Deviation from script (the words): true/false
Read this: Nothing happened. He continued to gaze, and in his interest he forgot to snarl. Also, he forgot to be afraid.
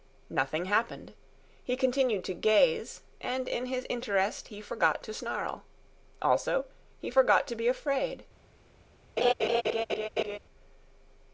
false